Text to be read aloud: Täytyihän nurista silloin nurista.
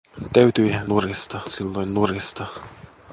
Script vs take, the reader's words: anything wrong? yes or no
no